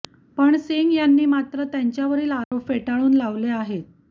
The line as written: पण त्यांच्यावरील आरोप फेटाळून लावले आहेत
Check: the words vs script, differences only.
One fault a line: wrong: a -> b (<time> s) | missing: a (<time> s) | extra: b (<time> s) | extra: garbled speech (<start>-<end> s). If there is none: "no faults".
extra: सिंग यांनी मात्र (0.6 s)